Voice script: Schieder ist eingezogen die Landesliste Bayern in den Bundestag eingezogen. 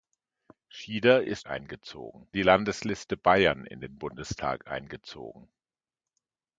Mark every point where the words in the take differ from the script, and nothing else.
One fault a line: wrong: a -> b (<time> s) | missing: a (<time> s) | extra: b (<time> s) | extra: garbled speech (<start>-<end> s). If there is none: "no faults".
no faults